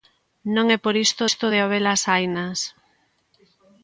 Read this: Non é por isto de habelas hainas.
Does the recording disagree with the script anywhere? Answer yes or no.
yes